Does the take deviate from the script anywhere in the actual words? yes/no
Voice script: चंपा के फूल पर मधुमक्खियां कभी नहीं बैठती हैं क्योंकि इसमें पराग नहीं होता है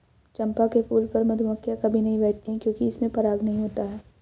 no